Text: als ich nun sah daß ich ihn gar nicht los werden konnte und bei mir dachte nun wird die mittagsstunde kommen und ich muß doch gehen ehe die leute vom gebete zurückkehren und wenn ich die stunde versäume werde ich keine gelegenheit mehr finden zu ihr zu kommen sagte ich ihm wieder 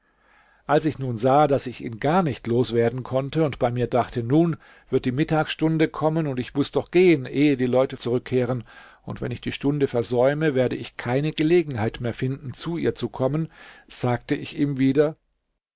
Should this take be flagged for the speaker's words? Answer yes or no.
yes